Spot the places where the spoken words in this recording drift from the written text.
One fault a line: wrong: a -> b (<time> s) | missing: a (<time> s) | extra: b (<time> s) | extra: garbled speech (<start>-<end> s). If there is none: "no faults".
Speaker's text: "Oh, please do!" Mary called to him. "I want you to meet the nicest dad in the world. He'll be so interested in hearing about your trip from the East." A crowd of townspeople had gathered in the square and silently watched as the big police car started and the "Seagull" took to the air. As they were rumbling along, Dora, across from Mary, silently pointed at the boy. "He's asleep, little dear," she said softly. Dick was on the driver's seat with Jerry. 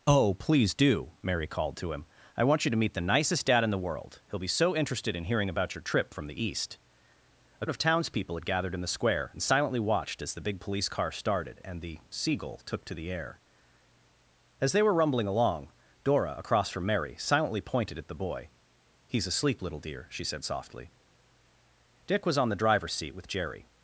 missing: crowd (7.7 s)